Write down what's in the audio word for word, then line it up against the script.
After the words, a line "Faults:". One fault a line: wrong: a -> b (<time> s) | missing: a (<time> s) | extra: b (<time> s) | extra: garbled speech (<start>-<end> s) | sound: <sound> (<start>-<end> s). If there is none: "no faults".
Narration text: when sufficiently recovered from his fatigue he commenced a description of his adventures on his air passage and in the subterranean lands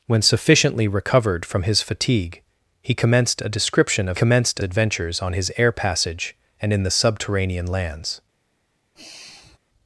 when sufficiently recovered from his fatigue he commenced a description of commenced adventures on his air passage and in the subterranean lands
Faults:
wrong: his -> commenced (4.1 s)
sound: sigh (9.0-9.6 s)